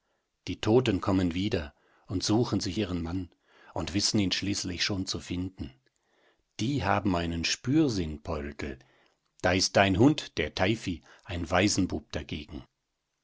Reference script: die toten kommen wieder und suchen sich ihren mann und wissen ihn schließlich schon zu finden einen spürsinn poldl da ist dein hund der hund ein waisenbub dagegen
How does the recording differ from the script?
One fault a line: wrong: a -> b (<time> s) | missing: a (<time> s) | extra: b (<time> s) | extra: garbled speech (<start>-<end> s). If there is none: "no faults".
extra: die haben (6.6 s)
wrong: hund -> teifi (10.5 s)